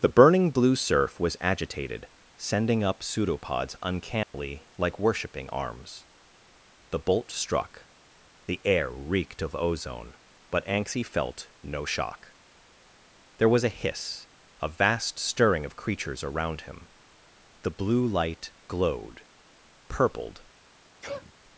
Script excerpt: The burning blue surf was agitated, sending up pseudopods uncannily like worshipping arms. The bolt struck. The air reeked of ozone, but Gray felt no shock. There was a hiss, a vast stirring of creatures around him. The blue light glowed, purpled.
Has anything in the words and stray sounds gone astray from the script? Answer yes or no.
yes